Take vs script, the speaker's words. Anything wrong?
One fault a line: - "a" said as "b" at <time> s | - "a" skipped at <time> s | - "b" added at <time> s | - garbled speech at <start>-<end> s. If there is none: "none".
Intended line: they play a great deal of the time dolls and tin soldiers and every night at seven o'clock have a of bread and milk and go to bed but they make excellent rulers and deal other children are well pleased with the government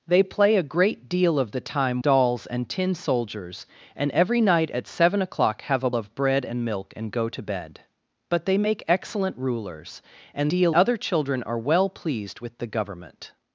none